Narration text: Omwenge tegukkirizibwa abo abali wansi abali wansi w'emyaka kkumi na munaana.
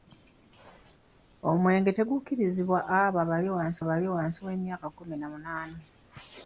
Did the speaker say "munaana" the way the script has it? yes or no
yes